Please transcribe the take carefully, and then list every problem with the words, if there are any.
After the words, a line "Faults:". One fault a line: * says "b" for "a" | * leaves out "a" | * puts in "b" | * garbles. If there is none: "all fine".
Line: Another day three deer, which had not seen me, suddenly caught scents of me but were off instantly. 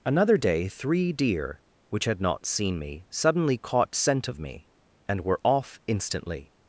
Another day three deer, which had not seen me, suddenly caught scent of me and were off instantly.
Faults:
* says "scent" for "scents"
* says "and" for "but"